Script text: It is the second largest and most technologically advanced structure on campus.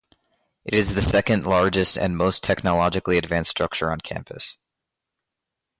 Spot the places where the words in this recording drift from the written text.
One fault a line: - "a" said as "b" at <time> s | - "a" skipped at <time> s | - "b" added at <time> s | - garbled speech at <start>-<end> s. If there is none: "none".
none